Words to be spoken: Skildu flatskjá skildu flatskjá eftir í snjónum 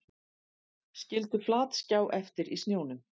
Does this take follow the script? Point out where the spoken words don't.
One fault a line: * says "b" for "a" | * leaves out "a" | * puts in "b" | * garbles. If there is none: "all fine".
* leaves out "skildu flatskjá"